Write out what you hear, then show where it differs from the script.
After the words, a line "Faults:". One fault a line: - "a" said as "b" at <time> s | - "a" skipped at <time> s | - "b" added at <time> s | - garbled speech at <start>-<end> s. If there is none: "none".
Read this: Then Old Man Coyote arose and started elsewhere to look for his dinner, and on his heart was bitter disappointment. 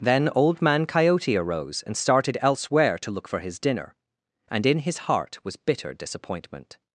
Then Old Man Coyote arose and started elsewhere to look for his dinner, and in his heart was bitter disappointment.
Faults:
- "on" said as "in" at 4.7 s